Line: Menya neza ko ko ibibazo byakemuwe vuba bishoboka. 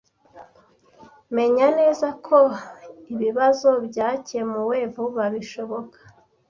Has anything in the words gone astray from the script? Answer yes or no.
yes